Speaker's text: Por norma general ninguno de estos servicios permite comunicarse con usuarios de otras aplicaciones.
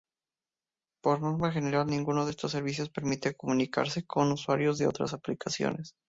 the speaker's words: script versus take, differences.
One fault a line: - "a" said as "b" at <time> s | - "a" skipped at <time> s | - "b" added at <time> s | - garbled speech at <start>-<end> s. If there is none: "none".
none